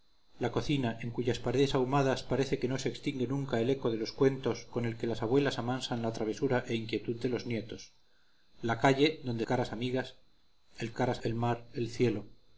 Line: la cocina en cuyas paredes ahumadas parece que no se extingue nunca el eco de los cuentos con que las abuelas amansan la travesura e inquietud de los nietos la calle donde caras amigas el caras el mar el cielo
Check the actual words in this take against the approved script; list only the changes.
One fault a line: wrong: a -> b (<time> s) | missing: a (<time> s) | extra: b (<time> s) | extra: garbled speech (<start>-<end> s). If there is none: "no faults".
no faults